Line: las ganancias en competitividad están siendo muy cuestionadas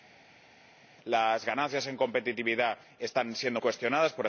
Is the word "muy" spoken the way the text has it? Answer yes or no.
no